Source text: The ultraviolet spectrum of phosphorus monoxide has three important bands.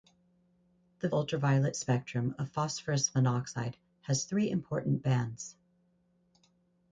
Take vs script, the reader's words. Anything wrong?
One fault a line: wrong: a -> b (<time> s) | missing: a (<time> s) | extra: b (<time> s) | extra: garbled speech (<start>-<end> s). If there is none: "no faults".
no faults